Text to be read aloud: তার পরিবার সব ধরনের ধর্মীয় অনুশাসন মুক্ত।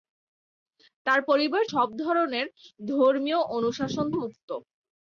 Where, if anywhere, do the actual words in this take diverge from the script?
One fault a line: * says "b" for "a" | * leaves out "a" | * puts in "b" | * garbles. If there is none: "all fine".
all fine